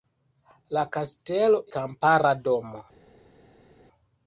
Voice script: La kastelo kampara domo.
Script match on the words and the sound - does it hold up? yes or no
yes